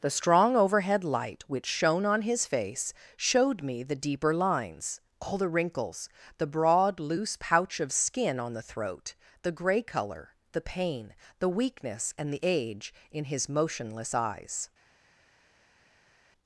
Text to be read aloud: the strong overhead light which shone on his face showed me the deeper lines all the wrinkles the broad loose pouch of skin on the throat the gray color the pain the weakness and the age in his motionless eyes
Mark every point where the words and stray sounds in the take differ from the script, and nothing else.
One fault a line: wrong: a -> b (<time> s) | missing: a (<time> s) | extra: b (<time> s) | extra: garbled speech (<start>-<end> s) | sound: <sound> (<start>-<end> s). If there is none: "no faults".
no faults